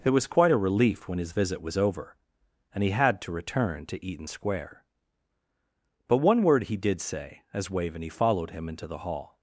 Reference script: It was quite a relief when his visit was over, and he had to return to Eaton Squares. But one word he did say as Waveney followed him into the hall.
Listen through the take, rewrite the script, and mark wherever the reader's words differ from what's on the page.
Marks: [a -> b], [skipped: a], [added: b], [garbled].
It was quite a relief when his visit was over, and he had to return to Eaton [Squares. -> Square] But one word he did say as Waveney followed him into the hall.